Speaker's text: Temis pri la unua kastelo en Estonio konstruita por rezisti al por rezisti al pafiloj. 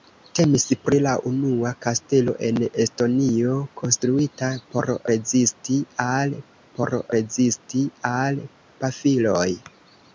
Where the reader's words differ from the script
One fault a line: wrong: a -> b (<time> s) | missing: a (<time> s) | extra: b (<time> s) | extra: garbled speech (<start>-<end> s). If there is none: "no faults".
no faults